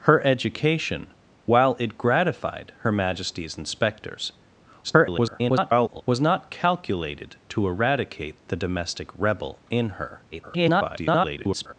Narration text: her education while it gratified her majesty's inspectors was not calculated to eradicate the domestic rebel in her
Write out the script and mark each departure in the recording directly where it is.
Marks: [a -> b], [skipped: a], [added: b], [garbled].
her education while it gratified her majesty's inspectors [garbled] was not calculated to eradicate the domestic rebel in her [garbled]